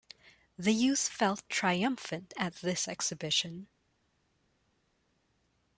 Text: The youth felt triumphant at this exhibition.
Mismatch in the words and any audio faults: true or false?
false